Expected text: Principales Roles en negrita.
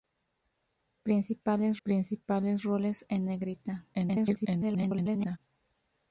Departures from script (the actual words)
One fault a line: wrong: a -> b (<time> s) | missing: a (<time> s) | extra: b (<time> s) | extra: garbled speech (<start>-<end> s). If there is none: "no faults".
extra: principales (1.8 s)
extra: garbled speech (3.9-5.4 s)